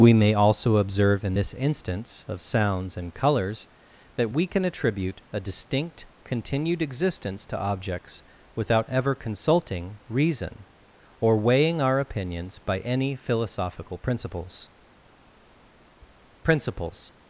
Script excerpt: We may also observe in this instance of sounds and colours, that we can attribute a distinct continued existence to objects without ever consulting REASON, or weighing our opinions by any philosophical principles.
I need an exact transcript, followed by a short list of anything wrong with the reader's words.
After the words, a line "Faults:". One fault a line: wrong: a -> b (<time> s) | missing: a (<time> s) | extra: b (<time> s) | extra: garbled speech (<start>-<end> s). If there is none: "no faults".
We may also observe in this instance of sounds and colours, that we can attribute a distinct continued existence to objects without ever consulting REASON, or weighing our opinions by any philosophical principles principles.
Faults:
extra: principles (16.4 s)